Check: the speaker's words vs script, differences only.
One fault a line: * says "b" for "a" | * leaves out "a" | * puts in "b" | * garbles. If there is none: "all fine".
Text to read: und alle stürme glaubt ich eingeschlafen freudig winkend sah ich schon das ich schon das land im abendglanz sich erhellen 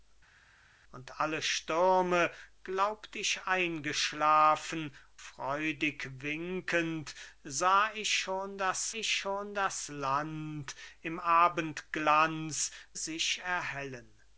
all fine